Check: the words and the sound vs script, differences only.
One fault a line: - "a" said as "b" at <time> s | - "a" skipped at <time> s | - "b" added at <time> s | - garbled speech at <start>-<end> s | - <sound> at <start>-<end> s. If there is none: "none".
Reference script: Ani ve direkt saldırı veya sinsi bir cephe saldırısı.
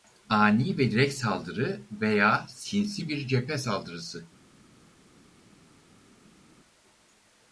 none